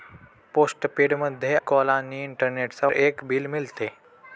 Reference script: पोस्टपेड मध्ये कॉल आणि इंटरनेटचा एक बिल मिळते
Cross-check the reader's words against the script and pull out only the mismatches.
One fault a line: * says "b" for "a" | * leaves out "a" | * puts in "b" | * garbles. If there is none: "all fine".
all fine